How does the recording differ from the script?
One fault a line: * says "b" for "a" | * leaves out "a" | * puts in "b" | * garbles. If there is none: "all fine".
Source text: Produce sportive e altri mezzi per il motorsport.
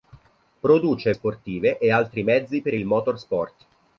all fine